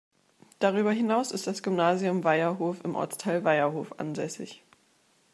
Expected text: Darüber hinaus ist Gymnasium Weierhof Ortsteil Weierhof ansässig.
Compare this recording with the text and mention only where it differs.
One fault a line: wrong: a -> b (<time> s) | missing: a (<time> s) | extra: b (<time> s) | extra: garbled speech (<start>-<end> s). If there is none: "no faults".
extra: das (1.5 s)
extra: im (2.8 s)